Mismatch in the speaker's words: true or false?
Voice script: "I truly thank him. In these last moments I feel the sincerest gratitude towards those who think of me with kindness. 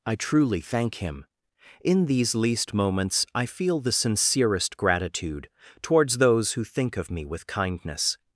true